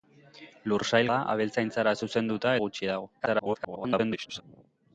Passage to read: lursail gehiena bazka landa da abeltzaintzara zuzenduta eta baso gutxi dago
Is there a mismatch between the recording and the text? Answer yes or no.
yes